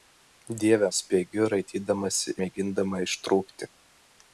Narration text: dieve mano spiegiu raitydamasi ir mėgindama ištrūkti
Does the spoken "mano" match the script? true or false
false